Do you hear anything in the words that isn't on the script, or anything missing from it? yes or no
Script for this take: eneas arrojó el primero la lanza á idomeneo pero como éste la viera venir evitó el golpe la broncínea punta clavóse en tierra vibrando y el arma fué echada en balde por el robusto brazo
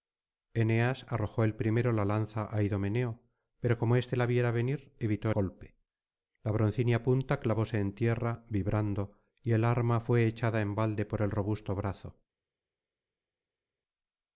yes